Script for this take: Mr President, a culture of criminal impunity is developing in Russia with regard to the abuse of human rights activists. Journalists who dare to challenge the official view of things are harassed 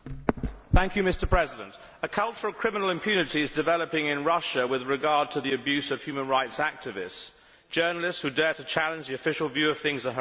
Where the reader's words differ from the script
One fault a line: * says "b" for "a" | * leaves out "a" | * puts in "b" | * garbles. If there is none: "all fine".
all fine